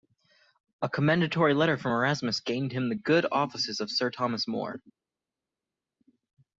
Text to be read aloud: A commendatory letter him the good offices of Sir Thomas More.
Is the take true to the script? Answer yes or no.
no